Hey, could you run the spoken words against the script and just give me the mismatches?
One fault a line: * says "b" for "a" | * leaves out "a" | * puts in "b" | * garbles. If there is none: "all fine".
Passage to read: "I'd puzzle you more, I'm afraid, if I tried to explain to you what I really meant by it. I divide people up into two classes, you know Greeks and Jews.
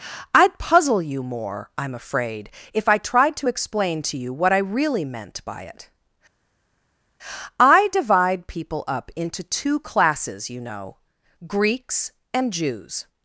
all fine